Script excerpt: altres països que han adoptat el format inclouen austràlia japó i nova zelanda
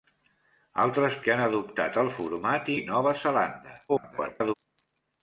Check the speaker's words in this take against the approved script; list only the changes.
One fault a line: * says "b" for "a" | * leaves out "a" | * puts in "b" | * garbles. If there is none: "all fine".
* leaves out "països"
* leaves out "inclouen austràlia japó"
* garbles